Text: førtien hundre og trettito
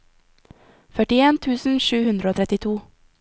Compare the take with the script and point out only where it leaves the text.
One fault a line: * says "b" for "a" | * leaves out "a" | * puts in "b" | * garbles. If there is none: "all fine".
* puts in "tusen sju"